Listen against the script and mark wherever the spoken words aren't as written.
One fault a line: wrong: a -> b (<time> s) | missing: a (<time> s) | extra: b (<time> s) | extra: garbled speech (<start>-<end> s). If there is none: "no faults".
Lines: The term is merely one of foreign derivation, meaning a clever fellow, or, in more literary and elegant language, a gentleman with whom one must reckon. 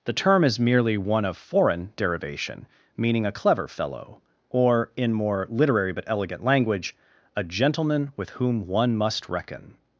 wrong: and -> but (5.9 s)